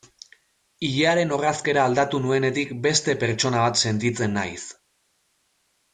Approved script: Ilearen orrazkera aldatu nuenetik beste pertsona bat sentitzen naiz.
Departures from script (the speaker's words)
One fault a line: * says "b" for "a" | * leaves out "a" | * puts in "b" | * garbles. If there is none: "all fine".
all fine